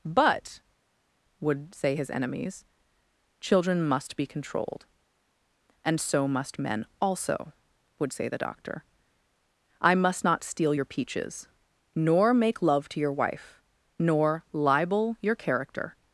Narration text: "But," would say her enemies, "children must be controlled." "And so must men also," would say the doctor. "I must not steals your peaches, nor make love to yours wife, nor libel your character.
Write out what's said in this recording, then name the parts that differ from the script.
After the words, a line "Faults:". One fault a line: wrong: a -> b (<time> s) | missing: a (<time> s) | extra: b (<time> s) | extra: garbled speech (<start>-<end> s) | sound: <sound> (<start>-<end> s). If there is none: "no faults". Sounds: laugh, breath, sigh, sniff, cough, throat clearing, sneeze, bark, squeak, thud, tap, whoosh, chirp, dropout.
"But," would say his enemies, "children must be controlled." "And so must men also," would say the doctor. "I must not steal your peaches, nor make love to your wife, nor libel your character.
Faults:
wrong: her -> his (2.0 s)
wrong: steals -> steal (10.4 s)
wrong: yours -> your (13.0 s)